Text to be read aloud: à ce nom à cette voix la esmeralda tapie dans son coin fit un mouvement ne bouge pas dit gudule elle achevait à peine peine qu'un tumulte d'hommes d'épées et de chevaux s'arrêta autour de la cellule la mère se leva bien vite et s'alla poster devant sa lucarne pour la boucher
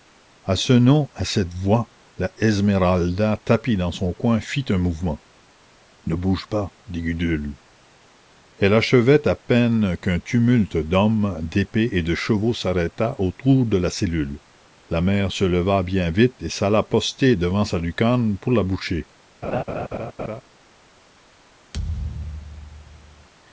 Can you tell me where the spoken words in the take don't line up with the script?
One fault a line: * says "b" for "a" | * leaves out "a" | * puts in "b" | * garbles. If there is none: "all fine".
* leaves out "peine"